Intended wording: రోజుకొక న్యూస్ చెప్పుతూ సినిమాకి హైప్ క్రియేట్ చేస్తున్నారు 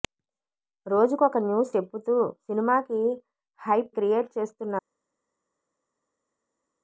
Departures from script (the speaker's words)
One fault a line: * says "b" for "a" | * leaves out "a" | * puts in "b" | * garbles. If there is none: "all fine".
all fine